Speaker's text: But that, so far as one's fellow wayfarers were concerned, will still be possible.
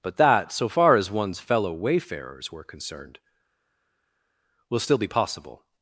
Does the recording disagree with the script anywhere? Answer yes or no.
no